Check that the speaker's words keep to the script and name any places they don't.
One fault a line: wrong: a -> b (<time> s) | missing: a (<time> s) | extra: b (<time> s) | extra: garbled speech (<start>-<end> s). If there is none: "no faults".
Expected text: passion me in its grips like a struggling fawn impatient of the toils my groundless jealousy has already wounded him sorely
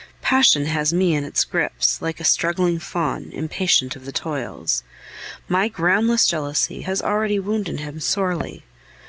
extra: has (0.7 s)